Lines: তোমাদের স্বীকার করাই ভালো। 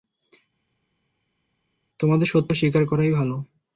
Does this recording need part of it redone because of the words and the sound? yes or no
yes